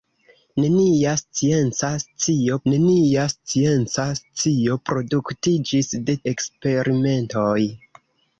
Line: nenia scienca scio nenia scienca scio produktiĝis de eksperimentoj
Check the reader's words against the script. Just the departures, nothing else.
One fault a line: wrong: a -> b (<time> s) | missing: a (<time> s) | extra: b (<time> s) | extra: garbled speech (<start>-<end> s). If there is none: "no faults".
no faults